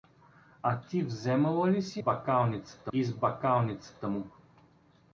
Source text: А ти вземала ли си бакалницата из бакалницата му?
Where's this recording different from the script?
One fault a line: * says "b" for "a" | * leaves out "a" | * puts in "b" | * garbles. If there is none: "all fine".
all fine